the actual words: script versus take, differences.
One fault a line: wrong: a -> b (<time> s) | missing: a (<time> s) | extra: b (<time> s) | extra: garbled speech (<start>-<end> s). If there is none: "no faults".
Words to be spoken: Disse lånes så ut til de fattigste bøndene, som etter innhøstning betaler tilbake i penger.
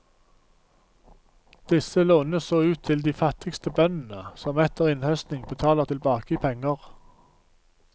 no faults